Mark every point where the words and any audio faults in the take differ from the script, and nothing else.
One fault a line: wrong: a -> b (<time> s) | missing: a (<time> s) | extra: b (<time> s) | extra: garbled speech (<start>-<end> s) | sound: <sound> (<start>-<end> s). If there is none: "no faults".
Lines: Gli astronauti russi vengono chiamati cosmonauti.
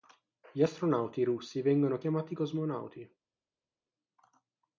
no faults